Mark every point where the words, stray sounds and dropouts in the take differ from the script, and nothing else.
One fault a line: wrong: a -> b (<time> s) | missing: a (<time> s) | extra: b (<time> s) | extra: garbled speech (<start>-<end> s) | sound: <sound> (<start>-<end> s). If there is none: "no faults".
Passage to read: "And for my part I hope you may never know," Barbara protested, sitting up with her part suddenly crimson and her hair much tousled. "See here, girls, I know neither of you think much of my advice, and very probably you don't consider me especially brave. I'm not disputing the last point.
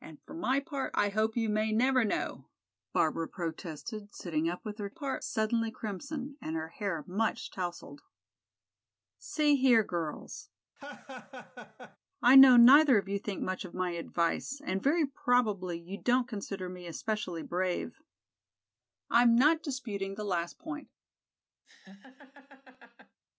sound: laugh (10.8-12.0 s)
sound: laugh (21.6-23.2 s)